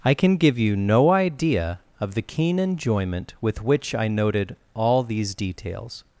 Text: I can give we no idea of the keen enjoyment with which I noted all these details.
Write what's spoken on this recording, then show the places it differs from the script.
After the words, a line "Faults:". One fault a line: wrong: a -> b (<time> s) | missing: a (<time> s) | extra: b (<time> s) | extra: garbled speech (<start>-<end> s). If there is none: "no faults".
I can give you no idea of the keen enjoyment with which I noted all these details.
Faults:
wrong: we -> you (0.6 s)